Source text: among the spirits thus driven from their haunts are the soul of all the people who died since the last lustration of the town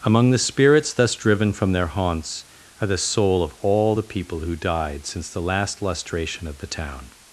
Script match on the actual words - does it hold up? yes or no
yes